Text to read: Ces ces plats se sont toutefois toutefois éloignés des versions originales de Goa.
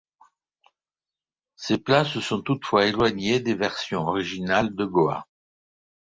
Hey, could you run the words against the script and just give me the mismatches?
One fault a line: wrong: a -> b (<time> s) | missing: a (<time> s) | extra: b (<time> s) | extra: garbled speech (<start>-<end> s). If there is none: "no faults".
missing: ces (1.8 s)
missing: toutefois (2.9 s)